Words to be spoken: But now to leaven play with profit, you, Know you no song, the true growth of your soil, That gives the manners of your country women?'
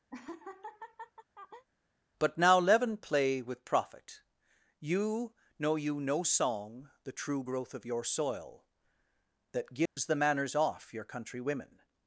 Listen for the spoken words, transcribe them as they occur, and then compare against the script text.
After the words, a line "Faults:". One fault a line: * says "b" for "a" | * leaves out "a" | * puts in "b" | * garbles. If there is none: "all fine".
But now leaven play with profit, you, Know you no song, the true growth of your soil, That gives the manners off your country women?'
Faults:
* leaves out "to"
* says "off" for "of"